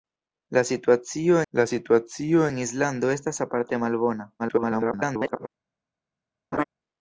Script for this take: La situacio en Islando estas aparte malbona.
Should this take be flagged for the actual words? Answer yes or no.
yes